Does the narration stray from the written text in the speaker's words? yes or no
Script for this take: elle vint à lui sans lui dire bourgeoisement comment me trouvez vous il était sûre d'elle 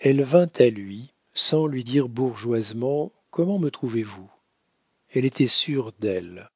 yes